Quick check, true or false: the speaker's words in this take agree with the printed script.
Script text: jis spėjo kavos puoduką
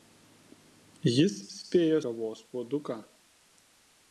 true